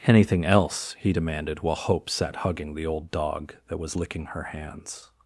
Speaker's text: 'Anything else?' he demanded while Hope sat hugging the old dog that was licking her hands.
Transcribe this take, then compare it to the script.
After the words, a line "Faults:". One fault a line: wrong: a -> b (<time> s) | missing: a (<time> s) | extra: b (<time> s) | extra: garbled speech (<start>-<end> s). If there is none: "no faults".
'Anything else?' he demanded while Hope sat hugging the old dog that was licking her hands.
Faults:
no faults